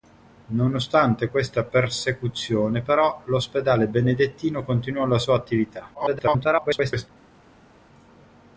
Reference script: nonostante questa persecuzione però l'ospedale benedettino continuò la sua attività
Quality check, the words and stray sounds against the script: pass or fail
fail